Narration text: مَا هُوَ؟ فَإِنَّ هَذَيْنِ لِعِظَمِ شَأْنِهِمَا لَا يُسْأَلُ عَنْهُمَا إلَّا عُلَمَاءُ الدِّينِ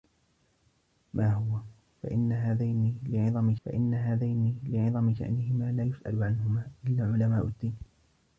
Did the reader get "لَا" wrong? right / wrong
right